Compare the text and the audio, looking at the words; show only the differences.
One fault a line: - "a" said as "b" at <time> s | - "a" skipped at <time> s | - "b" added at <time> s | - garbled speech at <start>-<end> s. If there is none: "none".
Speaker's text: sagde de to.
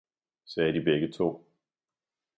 - "begge" added at 0.8 s